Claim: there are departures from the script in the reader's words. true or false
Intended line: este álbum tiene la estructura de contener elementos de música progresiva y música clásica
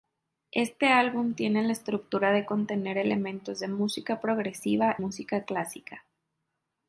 true